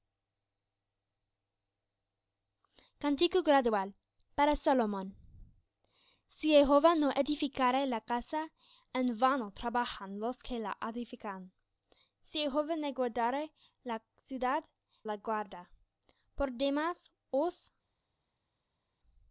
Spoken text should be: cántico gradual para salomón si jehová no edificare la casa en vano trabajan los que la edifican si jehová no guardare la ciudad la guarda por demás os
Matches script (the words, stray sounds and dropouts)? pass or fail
pass